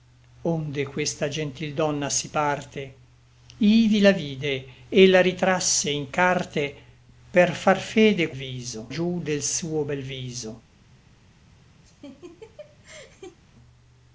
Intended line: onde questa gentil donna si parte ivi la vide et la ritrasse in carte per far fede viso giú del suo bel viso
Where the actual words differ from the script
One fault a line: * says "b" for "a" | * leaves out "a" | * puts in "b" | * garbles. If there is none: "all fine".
all fine